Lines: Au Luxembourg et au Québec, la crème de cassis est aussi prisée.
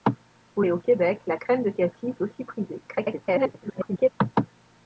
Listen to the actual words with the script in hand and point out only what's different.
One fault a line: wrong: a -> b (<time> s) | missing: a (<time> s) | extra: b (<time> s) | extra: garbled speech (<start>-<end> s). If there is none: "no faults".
missing: Luxembourg (0.6 s)
missing: est (2.1 s)
extra: garbled speech (2.9-4.1 s)